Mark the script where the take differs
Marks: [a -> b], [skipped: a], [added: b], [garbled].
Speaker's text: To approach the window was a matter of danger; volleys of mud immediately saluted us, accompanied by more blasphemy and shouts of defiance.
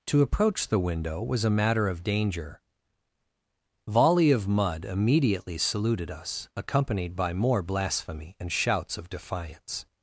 To approach the window was a matter of danger; [volleys -> volley] of mud immediately saluted us, accompanied by more blasphemy and shouts of defiance.